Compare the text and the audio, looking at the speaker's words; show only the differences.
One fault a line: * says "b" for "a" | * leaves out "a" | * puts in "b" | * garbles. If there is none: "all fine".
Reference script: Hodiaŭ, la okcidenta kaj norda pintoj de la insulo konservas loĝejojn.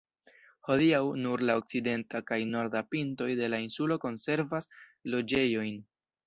* puts in "nur"